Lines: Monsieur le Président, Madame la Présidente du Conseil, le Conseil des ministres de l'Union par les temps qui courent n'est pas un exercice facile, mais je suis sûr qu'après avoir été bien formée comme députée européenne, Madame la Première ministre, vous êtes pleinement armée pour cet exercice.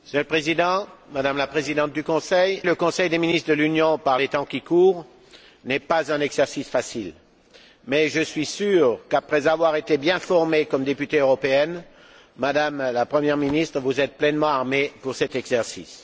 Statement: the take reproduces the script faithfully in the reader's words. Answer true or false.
true